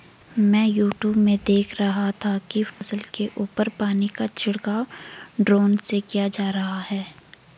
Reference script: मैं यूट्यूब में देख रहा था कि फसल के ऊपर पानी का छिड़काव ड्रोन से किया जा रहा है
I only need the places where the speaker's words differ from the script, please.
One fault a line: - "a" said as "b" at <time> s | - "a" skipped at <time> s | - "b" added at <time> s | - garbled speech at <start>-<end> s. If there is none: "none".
none